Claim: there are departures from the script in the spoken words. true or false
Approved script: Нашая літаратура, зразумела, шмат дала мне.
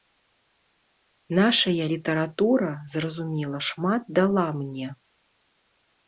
false